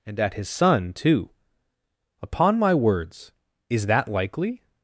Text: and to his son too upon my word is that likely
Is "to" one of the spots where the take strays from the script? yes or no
yes